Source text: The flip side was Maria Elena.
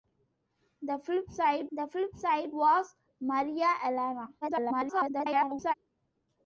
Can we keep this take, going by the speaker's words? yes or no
no